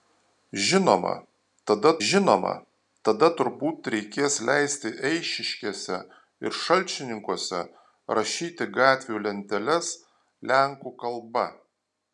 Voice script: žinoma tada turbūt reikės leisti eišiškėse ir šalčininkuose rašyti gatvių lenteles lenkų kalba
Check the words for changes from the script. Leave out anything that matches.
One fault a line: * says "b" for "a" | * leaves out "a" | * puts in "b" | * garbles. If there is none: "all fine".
* puts in "žinoma tada"